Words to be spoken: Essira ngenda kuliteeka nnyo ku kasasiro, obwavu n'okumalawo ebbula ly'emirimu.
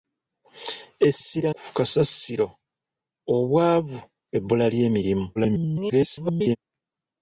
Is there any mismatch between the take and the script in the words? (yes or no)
yes